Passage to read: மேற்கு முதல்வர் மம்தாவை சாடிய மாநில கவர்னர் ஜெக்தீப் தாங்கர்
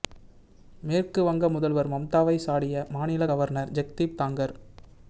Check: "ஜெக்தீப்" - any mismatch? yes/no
no